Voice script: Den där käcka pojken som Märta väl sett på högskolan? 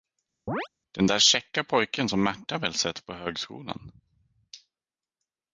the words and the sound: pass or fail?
fail